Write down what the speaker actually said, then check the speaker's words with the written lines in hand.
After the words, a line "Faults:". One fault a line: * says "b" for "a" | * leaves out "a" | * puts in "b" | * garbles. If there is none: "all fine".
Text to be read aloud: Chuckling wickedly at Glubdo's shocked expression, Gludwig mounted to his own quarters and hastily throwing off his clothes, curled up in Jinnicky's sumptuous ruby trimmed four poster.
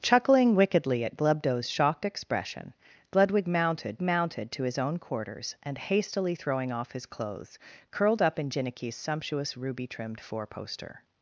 Chuckling wickedly at Glubdo's shocked expression, Gludwig mounted mounted to his own quarters and hastily throwing off his clothes, curled up in Jinnicky's sumptuous ruby trimmed four poster.
Faults:
* puts in "mounted"